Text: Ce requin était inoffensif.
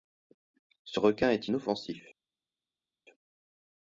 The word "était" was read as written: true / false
false